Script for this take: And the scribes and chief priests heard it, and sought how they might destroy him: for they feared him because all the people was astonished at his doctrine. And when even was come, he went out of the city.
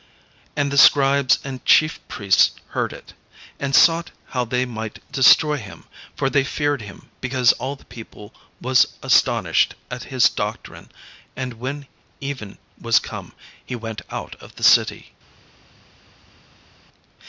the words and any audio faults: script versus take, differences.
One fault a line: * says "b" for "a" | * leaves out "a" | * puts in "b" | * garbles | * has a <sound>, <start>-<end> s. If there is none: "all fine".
all fine